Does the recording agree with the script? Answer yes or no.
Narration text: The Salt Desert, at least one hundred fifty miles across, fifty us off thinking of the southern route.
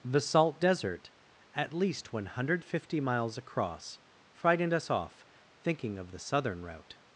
no